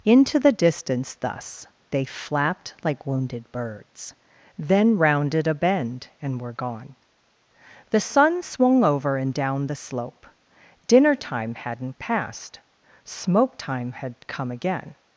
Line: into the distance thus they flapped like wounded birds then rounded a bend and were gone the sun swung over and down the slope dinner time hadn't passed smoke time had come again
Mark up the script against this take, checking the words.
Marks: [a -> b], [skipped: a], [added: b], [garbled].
into the distance thus they flapped like wounded birds then rounded a bend and were gone the sun swung over and down the slope dinner time hadn't passed smoke time had come again